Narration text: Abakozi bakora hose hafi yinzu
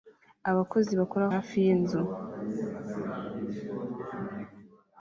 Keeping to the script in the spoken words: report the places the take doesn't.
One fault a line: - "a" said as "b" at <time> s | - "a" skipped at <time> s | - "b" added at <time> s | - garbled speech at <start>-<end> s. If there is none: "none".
- "hose" skipped at 1.2 s